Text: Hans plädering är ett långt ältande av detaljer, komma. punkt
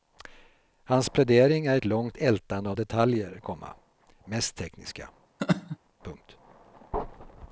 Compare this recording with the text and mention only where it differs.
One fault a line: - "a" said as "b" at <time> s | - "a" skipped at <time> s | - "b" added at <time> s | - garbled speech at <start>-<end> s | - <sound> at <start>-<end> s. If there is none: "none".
- "mest tekniska" added at 4.2 s
- laugh at 5.4-5.8 s